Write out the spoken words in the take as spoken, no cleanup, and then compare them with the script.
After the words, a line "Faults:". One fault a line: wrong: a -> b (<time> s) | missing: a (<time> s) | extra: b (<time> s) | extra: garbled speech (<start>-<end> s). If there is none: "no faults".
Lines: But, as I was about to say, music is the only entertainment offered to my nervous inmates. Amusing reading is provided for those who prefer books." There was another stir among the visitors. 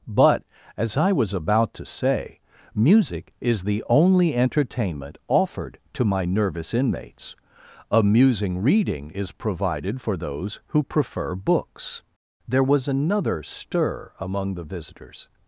But, as I was about to say, music is the only entertainment offered to my nervous inmates. Amusing reading is provided for those who prefer books." There was another stir among the visitors.
Faults:
no faults